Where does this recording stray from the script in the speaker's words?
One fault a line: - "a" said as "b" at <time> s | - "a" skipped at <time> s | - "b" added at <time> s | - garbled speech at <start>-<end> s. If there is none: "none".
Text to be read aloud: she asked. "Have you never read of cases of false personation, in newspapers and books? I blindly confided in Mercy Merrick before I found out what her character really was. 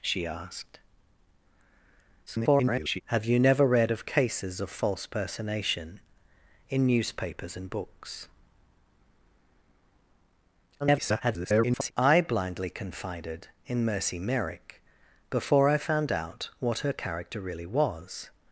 - garbled speech at 2.3-3.0 s
- garbled speech at 10.8-11.9 s